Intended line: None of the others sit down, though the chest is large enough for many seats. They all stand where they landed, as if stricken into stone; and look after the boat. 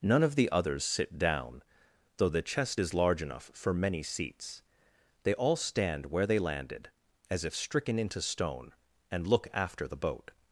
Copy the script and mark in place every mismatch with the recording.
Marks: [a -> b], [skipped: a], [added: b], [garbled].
None of the others sit down, though the chest is large enough for many seats. They all stand where they landed, as if stricken into stone; and look after the boat.